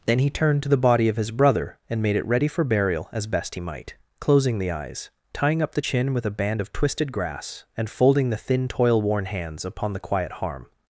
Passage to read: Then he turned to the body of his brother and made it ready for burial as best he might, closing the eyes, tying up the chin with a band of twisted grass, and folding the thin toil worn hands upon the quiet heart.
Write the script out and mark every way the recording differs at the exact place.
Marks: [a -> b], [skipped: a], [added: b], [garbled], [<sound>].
Then he turned to the body of his brother and made it ready for burial as best he might, closing the eyes, tying up the chin with a band of twisted grass, and folding the thin toil worn hands upon the quiet [heart. -> harm]